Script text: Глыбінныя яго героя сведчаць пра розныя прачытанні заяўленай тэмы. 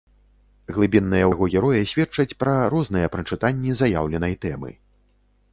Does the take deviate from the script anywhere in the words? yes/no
no